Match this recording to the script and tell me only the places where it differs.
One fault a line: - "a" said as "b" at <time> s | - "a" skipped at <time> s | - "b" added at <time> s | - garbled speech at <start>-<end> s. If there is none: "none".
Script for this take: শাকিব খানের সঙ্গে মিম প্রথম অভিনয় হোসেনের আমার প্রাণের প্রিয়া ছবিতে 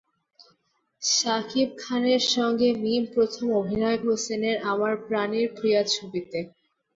none